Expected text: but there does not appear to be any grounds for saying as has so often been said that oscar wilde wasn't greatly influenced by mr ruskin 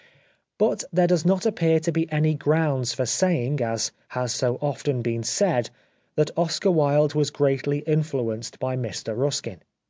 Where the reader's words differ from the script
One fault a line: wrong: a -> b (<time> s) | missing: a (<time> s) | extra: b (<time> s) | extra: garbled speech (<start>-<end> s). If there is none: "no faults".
wrong: wasn't -> was (7.1 s)